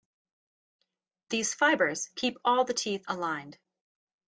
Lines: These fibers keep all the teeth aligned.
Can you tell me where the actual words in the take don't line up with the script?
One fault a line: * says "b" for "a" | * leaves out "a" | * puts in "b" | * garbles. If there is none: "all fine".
all fine